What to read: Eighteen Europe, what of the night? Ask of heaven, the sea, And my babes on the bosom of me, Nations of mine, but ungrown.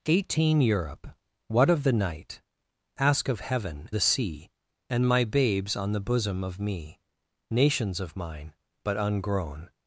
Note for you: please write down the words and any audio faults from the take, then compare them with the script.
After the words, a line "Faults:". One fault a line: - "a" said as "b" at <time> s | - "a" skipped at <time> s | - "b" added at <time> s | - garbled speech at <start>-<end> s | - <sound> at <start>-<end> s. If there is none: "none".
Eighteen Europe, what of the night? Ask of heaven, the sea, And my babes on the bosom of me, Nations of mine, but ungrown.
Faults:
none